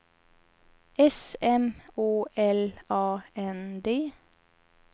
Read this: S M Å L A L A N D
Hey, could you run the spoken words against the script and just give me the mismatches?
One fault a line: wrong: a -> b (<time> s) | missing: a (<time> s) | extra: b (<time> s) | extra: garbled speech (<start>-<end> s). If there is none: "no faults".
missing: L A (3.2 s)